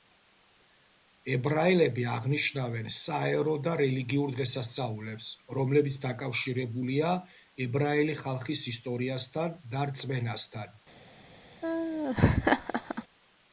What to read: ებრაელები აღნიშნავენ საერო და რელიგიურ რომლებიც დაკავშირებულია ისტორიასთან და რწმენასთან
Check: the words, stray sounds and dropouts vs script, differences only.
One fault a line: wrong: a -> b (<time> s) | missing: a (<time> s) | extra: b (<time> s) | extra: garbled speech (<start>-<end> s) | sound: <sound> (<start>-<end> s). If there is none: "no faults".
extra: დღესასწაულებს (4.4 s)
extra: ებრაელი ხალხის (7.7 s)
sound: laugh (11.6-13.0 s)